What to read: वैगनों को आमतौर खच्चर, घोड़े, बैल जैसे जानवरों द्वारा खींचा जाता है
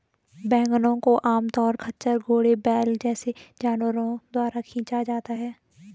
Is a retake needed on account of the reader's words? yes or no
no